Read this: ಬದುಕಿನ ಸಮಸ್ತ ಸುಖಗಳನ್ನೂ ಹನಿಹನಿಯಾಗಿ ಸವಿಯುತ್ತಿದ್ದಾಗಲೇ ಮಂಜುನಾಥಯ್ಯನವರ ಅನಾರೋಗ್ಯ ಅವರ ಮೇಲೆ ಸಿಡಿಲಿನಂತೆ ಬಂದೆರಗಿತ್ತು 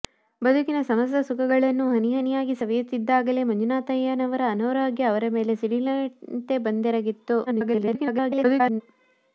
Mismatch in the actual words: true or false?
true